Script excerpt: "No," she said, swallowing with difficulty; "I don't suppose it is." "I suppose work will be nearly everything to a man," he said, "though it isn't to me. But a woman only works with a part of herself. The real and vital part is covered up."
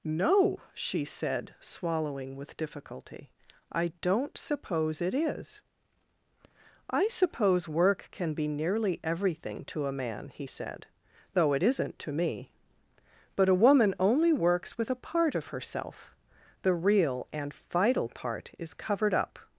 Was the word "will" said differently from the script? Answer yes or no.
yes